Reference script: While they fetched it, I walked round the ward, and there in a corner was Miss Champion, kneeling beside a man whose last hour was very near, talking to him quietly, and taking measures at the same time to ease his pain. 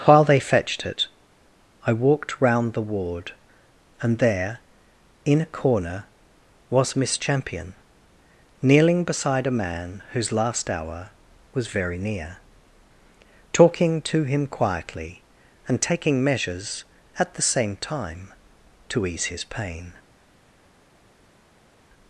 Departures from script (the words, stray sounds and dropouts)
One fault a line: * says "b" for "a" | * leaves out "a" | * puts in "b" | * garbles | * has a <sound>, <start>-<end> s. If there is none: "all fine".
all fine